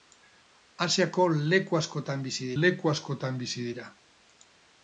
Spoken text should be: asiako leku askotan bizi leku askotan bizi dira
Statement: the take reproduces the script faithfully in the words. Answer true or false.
true